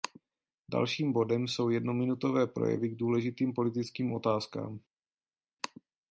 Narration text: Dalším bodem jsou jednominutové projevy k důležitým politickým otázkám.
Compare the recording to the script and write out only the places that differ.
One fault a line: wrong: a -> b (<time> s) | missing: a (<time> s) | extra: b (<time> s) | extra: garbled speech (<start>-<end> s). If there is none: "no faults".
no faults